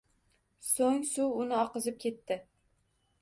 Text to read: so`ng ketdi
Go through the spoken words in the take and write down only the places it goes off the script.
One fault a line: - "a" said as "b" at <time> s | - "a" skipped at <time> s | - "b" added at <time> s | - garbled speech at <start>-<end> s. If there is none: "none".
- "suv uni oqizib" added at 1.1 s